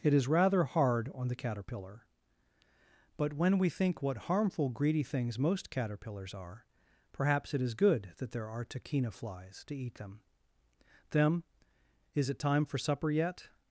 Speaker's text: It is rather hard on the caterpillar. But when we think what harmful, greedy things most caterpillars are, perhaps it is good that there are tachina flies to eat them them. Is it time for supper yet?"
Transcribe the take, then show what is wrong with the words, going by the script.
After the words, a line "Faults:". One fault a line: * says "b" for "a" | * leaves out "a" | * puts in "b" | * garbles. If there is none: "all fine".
It is rather hard on the caterpillar. But when we think what harmful, greedy things most caterpillars are, perhaps it is good that there are tachina flies to eat them them. Is it time for supper yet?"
Faults:
all fine